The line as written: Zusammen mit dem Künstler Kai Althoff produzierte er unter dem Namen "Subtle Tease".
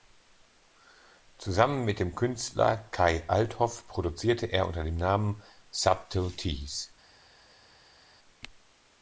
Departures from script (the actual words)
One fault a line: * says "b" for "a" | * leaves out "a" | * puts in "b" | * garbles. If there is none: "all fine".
all fine